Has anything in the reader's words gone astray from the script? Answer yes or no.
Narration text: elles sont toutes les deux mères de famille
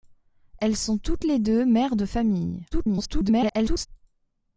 yes